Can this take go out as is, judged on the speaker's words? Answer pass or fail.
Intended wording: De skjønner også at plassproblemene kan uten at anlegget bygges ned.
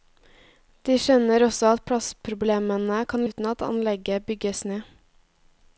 pass